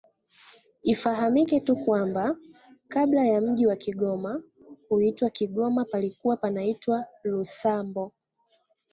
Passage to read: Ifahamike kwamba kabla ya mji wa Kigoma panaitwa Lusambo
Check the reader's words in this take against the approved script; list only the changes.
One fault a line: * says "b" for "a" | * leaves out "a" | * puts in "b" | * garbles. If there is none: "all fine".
* puts in "tu"
* puts in "kuitwa Kigoma palikuwa"